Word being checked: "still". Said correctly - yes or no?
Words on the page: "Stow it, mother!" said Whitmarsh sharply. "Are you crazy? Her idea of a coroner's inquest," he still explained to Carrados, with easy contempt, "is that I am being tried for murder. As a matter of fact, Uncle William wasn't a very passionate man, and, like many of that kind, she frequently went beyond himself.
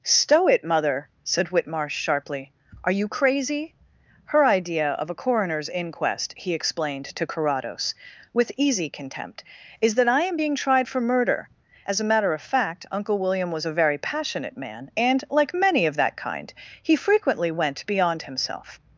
no